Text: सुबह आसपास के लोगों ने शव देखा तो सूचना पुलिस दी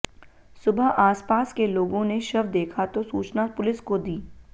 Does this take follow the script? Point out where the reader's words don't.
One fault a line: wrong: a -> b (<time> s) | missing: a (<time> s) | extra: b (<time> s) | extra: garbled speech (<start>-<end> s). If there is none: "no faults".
extra: को (3.8 s)